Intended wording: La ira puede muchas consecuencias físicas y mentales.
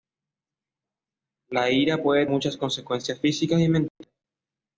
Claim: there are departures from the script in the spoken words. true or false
false